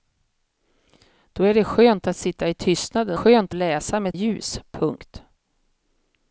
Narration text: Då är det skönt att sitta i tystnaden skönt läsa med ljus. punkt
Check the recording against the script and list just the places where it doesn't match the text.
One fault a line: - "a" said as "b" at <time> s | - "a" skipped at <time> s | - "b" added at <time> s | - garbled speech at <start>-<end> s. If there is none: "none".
none